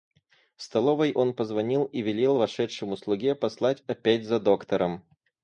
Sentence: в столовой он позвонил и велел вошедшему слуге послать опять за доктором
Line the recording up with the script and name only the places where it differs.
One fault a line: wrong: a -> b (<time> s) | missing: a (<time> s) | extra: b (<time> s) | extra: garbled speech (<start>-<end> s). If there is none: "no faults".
no faults